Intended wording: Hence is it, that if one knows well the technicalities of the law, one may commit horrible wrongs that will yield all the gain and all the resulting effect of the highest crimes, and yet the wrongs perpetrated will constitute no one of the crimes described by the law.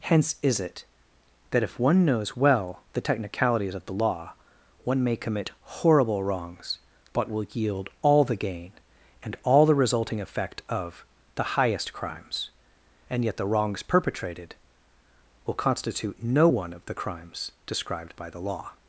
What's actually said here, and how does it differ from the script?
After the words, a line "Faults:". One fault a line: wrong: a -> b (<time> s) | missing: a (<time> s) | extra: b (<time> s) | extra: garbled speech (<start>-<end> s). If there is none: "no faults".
Hence is it, that if one knows well the technicalities of the law, one may commit horrible wrongs but will yield all the gain and all the resulting effect of the highest crimes, and yet the wrongs perpetrated will constitute no one of the crimes described by the law.
Faults:
wrong: that -> but (7.1 s)